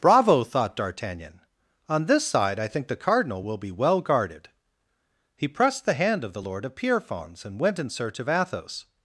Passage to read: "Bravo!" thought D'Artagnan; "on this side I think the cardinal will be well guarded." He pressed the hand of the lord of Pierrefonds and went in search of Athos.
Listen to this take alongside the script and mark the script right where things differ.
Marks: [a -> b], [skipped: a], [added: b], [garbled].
"Bravo!" thought D'Artagnan; "on this side I think the cardinal will be well guarded." He pressed the hand of the lord of Pierrefonds and went in search of Athos.